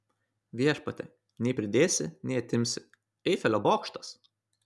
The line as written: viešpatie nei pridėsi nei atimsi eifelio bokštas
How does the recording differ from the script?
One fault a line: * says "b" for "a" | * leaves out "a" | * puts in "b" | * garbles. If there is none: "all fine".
all fine